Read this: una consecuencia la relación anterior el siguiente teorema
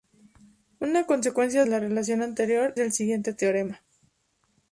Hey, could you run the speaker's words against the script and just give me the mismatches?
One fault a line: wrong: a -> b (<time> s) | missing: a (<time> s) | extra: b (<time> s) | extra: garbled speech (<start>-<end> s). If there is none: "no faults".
no faults